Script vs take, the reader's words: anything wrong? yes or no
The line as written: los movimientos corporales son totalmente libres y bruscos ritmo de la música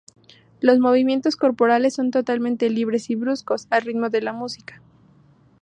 yes